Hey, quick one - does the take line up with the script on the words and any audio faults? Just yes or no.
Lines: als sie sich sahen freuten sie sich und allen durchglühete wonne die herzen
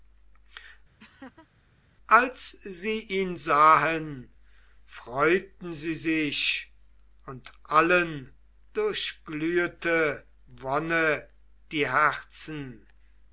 no